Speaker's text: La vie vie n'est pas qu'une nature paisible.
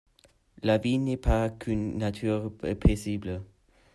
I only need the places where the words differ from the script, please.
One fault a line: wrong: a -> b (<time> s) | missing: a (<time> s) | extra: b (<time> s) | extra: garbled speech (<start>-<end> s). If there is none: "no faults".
missing: vie (1.0 s)